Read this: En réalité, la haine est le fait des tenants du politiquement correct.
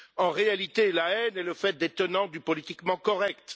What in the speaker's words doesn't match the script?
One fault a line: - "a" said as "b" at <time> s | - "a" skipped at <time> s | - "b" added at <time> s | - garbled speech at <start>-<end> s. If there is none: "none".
none